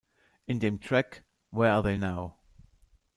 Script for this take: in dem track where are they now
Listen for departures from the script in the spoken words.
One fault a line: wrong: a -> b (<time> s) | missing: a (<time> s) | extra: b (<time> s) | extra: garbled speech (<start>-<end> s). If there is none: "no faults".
no faults